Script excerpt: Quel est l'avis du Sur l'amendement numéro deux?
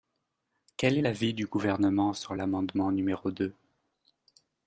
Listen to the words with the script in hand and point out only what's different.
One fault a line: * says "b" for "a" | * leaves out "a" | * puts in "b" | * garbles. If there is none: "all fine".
* puts in "Gouvernement"